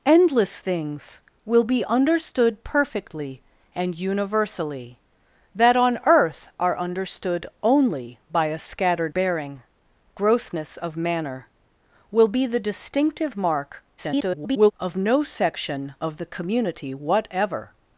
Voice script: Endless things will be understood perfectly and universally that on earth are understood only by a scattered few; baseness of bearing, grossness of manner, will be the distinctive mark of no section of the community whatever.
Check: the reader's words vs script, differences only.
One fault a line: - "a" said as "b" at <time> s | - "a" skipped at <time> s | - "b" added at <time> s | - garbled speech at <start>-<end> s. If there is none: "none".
- "few baseness of" skipped at 9.2 s
- garbled speech at 14.0-14.7 s